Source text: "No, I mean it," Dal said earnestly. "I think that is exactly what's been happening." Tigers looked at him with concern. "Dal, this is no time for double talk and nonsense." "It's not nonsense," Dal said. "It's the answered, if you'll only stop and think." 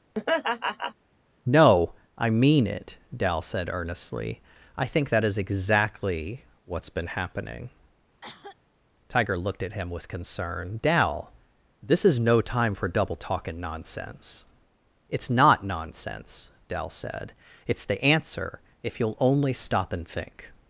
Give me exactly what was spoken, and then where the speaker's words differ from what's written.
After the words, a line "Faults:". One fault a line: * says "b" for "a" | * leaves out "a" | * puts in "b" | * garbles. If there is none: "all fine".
"No, I mean it," Dal said earnestly. "I think that is exactly what's been happening." Tiger looked at him with concern. "Dal, this is no time for double talk and nonsense." "It's not nonsense," Dal said. "It's the answer, if you'll only stop and think."
Faults:
* says "Tiger" for "Tigers"
* says "answer" for "answered"